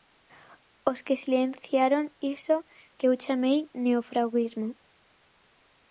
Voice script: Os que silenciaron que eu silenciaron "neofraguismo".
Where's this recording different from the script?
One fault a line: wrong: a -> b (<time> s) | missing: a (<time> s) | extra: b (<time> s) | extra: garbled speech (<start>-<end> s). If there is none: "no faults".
extra: iso (2.4 s)
wrong: silenciaron -> chamei (3.2 s)